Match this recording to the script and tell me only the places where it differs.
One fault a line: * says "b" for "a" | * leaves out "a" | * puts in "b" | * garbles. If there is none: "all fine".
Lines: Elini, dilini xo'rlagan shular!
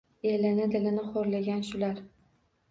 all fine